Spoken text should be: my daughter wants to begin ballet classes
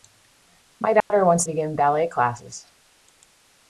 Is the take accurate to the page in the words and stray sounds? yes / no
no